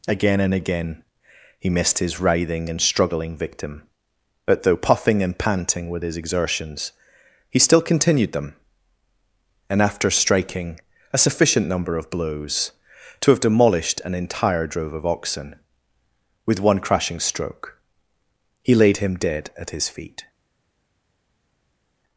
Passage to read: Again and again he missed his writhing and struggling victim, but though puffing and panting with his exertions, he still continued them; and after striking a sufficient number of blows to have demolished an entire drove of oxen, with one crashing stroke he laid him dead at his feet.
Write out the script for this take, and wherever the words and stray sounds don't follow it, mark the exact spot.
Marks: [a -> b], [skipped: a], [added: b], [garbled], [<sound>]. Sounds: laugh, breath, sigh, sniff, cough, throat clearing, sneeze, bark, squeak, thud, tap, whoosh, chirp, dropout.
Again and again he missed his writhing and struggling victim, but though puffing and panting with his exertions, he still continued them; and after striking a sufficient number of blows to have demolished an entire drove of oxen, with one crashing stroke he laid him dead at his feet.